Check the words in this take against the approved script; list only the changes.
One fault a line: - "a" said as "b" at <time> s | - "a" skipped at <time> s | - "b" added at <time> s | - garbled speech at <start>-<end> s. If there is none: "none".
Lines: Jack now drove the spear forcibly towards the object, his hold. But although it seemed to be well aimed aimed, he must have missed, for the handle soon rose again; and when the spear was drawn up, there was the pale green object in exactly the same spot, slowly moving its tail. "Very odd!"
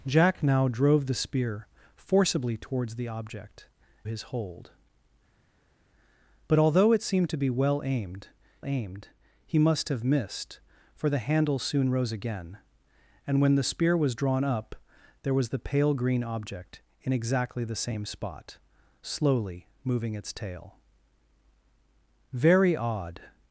none